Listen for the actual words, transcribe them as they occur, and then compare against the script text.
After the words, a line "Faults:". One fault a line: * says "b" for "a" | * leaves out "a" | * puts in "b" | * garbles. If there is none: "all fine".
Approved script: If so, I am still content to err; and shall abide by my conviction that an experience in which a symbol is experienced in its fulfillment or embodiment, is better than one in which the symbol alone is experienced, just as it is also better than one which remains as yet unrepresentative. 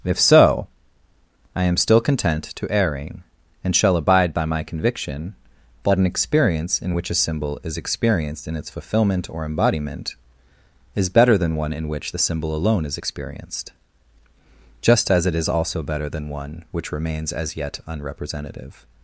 If so, I am still content to erring; and shall abide by my conviction that an experience in which a symbol is experienced in its fulfillment or embodiment, is better than one in which the symbol alone is experienced, just as it is also better than one which remains as yet unrepresentative.
Faults:
* says "erring" for "err"